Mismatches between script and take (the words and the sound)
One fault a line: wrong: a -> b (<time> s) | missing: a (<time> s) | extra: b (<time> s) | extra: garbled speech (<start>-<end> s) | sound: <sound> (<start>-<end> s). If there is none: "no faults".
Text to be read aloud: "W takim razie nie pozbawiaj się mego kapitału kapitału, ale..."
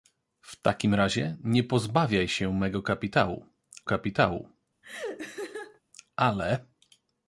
sound: laugh (4.8-5.8 s)